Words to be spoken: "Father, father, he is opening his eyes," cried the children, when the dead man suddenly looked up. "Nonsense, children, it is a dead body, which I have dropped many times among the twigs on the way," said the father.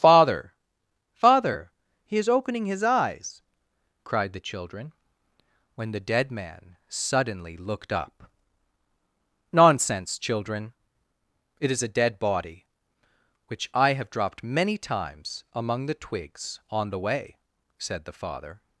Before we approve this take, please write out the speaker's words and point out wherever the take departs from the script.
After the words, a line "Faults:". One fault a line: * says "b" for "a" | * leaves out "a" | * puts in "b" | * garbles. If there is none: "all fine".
"Father, father, he is opening his eyes," cried the children, when the dead man suddenly looked up. "Nonsense, children, it is a dead body, which I have dropped many times among the twigs on the way," said the father.
Faults:
all fine